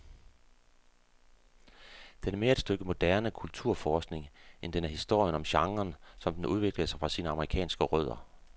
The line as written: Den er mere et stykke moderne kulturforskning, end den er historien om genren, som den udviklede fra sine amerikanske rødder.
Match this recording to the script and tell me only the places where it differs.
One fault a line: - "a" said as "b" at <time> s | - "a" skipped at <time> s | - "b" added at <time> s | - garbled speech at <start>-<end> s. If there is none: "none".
- "sig" added at 6.9 s